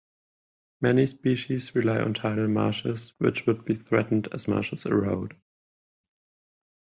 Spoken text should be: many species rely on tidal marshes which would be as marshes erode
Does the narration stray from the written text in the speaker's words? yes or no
yes